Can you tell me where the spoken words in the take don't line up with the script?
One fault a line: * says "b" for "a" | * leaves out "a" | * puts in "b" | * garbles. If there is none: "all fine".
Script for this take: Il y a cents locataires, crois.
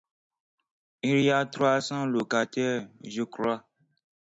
* puts in "trois"
* puts in "je"